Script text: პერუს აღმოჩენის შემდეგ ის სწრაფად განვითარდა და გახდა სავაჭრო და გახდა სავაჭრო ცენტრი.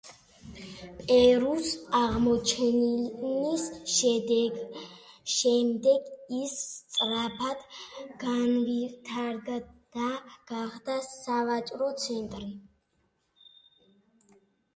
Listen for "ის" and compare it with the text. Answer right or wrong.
right